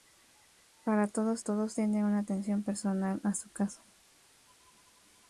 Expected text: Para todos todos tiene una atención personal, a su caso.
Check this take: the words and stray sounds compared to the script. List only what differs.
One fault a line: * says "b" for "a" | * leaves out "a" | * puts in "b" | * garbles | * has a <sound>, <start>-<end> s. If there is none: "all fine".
all fine